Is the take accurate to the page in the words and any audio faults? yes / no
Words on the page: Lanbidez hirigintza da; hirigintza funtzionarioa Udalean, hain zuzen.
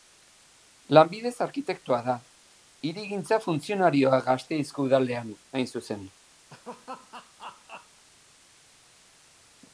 no